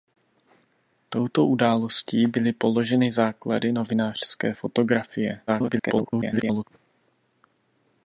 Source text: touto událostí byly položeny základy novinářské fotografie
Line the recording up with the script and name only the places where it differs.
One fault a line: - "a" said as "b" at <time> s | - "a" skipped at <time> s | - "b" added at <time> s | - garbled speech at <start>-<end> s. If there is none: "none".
- garbled speech at 5.5-6.6 s